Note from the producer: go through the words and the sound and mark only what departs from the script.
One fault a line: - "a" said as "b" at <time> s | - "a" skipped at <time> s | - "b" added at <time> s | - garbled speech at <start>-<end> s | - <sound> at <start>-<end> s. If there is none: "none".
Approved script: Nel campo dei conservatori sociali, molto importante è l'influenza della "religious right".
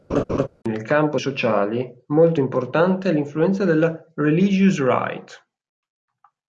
- laugh at 0.1-0.5 s
- "dei conservatori" skipped at 1.2 s